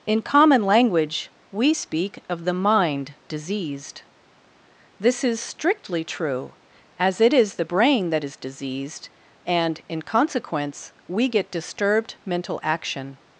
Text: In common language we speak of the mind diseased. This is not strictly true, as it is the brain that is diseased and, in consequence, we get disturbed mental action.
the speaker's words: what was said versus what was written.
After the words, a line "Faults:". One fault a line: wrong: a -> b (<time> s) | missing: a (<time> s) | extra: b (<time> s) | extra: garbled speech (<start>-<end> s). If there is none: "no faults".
In common language we speak of the mind diseased. This is strictly true, as it is the brain that is diseased and, in consequence, we get disturbed mental action.
Faults:
missing: not (5.4 s)